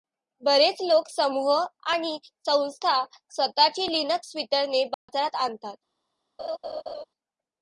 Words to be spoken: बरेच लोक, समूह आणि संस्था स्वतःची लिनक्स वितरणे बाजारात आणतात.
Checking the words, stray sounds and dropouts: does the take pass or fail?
fail